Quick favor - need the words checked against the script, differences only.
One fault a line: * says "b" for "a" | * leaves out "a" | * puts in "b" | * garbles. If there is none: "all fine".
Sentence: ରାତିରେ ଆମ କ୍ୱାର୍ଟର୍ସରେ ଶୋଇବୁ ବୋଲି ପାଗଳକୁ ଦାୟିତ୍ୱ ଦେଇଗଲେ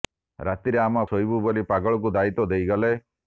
* leaves out "କ୍ୱାର୍ଟର୍ସରେ"